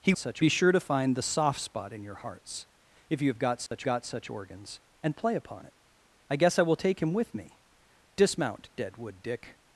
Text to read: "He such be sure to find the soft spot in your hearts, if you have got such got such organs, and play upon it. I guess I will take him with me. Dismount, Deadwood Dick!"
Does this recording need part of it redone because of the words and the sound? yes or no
yes